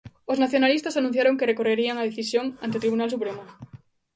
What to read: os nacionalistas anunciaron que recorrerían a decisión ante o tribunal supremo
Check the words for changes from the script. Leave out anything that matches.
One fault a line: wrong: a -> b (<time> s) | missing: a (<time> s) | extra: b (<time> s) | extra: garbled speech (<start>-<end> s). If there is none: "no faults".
no faults